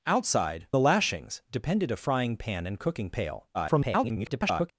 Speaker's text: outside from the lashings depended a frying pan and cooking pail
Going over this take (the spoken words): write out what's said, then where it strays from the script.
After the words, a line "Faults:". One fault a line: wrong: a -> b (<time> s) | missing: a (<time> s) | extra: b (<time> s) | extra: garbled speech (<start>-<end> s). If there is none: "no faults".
outside the lashings depended a frying pan and cooking pail [garbled]
Faults:
missing: from (0.7 s)
extra: garbled speech (3.5-4.7 s)